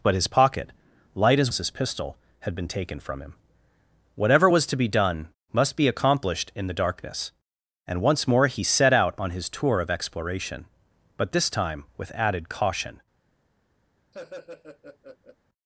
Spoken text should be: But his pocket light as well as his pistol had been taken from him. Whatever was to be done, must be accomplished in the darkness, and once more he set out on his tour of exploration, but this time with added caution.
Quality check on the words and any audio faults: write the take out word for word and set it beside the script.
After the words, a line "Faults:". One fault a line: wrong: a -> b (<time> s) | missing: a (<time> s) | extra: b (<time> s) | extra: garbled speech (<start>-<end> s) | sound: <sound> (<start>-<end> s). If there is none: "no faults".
But his pocket light as as his pistol had been taken from him. Whatever was to be done, must be accomplished in the darkness, and once more he set out on his tour of exploration, but this time with added caution.
Faults:
missing: well (1.5 s)
sound: laugh (14.1-15.4 s)